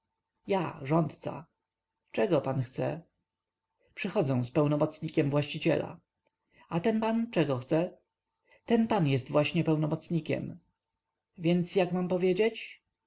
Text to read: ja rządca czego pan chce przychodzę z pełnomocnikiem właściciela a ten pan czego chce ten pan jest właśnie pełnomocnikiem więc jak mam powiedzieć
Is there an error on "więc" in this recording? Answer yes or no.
no